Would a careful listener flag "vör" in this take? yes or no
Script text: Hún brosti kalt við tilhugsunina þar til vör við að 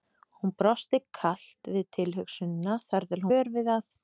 no